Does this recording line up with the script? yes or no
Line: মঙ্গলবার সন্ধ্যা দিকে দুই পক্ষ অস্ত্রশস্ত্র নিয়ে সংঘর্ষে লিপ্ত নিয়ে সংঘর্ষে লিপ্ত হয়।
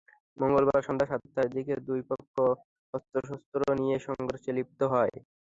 no